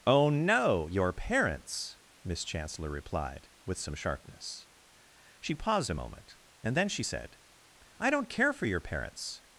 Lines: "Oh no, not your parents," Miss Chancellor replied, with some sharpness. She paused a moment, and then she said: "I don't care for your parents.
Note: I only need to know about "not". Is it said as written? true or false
false